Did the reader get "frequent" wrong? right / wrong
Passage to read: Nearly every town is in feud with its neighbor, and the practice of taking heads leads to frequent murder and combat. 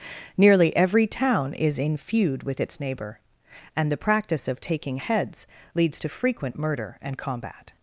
right